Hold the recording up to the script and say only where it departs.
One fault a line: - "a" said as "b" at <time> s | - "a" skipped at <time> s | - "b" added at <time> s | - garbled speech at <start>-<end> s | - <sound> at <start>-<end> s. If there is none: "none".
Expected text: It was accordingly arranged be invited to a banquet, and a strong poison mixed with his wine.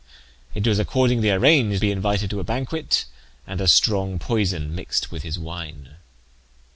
none